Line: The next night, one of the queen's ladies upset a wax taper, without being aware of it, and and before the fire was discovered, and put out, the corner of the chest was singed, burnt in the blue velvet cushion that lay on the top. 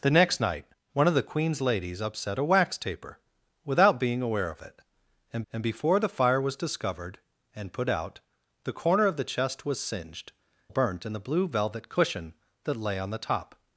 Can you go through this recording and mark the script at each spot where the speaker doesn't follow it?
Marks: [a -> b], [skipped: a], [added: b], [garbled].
The next night, one of the queen's ladies upset a wax taper, without being aware of it, and and before the fire was discovered, and put out, the corner of the chest was singed, burnt in the blue velvet cushion that lay on the top.